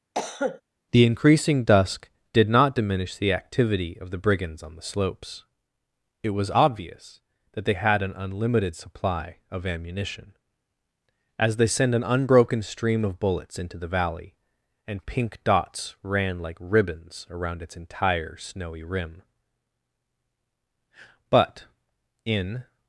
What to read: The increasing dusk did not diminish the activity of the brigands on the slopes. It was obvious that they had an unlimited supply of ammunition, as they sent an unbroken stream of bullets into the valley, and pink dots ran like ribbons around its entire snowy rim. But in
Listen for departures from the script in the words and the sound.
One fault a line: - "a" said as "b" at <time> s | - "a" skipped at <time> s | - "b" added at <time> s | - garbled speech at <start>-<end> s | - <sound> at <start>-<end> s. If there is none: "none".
- cough at 0.1-0.6 s